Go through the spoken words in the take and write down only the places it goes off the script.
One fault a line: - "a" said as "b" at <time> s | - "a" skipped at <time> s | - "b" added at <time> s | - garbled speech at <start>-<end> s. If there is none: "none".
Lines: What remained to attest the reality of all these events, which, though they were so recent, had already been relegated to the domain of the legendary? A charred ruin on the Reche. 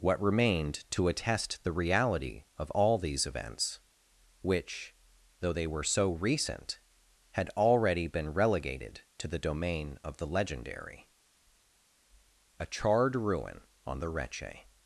none